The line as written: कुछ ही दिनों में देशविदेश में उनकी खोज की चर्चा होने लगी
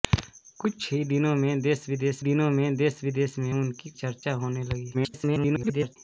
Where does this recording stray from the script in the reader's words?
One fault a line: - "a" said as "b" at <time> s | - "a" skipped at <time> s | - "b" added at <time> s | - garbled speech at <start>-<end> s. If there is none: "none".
- "दिनों" added at 2.2 s
- "उनकी खोज की" said as "देशविदेश में उनकी" at 2.8 s
- garbled speech at 4.9-6.0 s